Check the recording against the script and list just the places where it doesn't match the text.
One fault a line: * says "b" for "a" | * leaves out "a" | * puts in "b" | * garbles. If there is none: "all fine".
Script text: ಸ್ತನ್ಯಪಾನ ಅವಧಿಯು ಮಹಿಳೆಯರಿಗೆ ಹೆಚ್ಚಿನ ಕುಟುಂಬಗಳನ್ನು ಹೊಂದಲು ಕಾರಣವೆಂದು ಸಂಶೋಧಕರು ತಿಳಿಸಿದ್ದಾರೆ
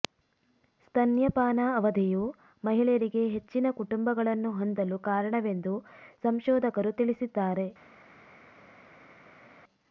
all fine